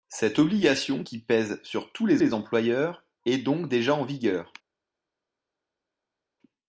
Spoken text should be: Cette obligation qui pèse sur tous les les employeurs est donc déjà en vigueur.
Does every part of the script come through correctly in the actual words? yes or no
yes